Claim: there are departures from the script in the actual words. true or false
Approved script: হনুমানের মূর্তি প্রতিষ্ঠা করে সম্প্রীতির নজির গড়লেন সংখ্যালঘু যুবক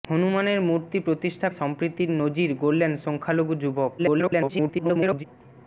true